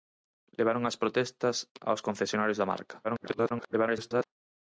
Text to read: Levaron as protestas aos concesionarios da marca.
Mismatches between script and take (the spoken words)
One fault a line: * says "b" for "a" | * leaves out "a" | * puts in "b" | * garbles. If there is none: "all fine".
* garbles